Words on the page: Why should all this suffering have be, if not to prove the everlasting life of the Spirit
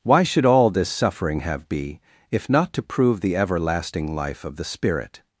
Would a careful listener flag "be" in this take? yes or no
no